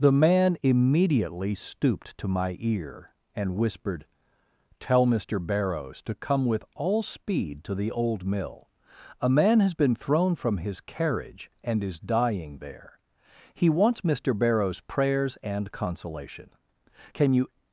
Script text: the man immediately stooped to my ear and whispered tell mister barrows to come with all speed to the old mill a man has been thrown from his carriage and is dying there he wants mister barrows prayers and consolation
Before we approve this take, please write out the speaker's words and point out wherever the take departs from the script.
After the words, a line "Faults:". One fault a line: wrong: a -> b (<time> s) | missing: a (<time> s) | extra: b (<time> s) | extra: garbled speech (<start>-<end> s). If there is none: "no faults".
the man immediately stooped to my ear and whispered tell mister barrows to come with all speed to the old mill a man has been thrown from his carriage and is dying there he wants mister barrows prayers and consolation can you
Faults:
extra: can you (17.1 s)